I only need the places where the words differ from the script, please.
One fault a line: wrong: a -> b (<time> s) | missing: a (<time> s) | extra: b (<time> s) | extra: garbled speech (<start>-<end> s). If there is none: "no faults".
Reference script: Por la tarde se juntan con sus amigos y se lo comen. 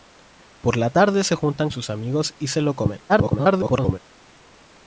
missing: con (1.7 s)
extra: garbled speech (3.1-4.0 s)